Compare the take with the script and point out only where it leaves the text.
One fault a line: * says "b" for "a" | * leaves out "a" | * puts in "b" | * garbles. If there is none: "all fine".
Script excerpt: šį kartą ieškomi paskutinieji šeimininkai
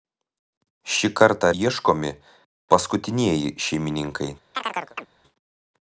all fine